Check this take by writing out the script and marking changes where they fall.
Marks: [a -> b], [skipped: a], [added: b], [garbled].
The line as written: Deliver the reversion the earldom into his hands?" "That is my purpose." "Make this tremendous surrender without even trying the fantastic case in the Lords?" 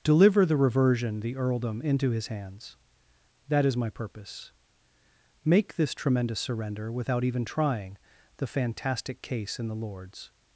Deliver the reversion the earldom into his hands?" "That is my purpose." "Make this tremendous surrender without even trying the fantastic case in the Lords?"